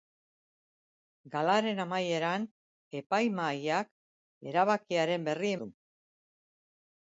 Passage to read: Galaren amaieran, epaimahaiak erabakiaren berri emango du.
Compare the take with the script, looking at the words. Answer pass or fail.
fail